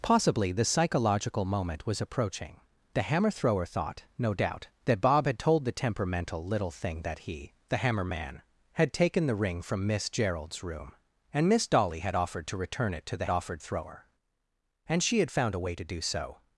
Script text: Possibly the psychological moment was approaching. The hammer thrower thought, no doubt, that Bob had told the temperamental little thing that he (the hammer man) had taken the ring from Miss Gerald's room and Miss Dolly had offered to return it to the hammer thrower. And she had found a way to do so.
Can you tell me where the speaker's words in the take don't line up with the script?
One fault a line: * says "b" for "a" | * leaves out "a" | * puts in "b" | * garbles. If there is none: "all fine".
* says "offered" for "hammer"